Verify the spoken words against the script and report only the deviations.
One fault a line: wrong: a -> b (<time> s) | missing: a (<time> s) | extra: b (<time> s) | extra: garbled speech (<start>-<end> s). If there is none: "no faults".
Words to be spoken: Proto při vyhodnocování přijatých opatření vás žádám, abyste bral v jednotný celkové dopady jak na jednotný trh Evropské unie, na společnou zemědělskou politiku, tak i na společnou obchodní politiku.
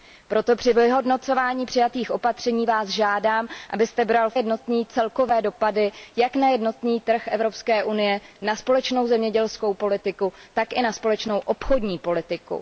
no faults